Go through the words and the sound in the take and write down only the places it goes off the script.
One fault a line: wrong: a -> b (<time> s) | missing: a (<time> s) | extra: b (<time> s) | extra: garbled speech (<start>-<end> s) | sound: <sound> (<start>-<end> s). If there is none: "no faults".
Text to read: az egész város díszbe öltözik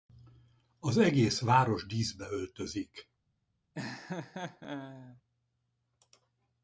sound: laugh (3.7-5.2 s)